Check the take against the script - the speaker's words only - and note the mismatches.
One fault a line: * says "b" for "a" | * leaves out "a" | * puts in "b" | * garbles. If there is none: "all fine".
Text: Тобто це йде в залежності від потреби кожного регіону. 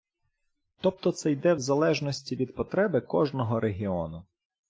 all fine